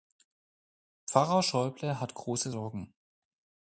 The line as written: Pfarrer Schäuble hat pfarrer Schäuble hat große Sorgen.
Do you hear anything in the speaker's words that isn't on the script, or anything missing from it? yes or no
yes